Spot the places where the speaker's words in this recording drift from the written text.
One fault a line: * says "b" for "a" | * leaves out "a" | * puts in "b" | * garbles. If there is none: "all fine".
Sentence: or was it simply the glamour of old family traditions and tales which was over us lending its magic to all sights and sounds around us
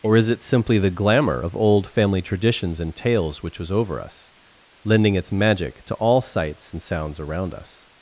* says "is" for "was"